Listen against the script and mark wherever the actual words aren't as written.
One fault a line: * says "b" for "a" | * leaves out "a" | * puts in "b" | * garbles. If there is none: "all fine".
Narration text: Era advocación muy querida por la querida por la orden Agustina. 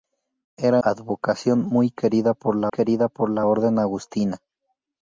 all fine